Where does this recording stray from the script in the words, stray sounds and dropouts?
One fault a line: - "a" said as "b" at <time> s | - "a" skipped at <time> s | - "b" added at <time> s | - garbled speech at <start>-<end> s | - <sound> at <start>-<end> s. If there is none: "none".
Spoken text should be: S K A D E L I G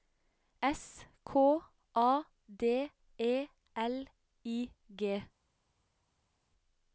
none